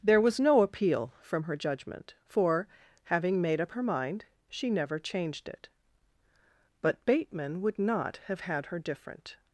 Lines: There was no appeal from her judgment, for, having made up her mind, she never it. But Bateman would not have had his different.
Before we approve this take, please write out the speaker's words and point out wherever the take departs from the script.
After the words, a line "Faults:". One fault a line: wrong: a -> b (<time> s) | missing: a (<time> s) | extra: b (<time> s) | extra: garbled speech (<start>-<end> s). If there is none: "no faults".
There was no appeal from her judgment, for, having made up her mind, she never changed it. But Bateman would not have had her different.
Faults:
extra: changed (5.0 s)
wrong: his -> her (8.7 s)